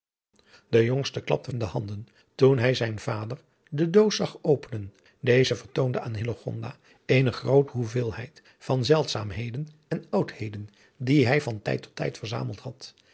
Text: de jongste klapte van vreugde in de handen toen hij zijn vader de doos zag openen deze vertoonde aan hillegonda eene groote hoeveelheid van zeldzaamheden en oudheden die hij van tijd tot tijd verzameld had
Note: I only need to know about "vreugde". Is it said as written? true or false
false